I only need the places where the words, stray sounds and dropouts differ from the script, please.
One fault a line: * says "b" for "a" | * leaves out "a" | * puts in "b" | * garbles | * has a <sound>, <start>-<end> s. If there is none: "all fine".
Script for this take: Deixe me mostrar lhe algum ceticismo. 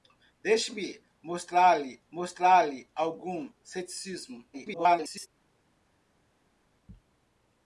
* puts in "mostrar lhe"
* garbles